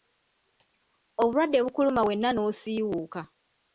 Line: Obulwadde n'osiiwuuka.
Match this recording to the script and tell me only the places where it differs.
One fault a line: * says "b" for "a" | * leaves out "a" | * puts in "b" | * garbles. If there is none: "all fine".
* puts in "bukuluma wenna"